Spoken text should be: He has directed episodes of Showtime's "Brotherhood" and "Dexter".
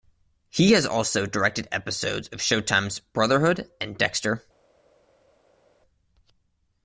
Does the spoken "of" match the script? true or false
true